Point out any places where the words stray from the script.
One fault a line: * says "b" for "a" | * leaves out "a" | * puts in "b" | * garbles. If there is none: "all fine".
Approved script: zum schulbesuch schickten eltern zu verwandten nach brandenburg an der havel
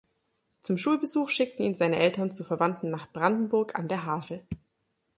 * puts in "ihn seine"